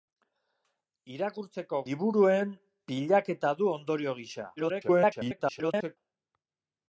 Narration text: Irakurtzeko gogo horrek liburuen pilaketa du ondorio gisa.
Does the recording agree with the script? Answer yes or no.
no